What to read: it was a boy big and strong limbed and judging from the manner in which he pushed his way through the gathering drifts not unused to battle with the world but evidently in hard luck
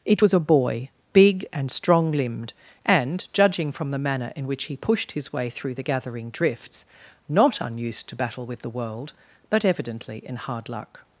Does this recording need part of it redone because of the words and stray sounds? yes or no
no